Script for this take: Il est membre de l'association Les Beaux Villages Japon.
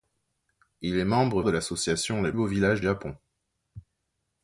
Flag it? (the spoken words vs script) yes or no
no